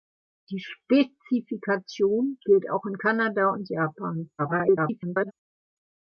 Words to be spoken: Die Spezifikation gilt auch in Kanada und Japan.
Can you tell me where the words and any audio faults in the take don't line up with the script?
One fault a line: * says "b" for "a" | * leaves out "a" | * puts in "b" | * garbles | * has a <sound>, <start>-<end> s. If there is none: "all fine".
* garbles